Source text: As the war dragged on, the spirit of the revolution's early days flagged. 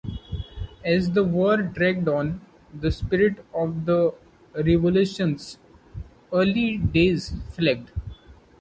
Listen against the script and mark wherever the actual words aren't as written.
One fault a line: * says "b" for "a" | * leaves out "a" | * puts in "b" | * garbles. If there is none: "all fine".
all fine